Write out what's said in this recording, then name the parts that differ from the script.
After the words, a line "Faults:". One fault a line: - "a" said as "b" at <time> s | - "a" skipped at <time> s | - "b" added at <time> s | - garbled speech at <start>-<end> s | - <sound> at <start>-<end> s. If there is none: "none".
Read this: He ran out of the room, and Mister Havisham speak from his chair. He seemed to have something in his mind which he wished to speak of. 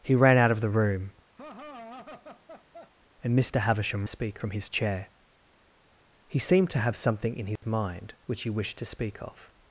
He ran out of the room, and Mister Havisham speak from his chair. He seemed to have something in his mind which he wished to speak of.
Faults:
- laugh at 1.4-2.9 s
- dropout at 7.6-7.6 s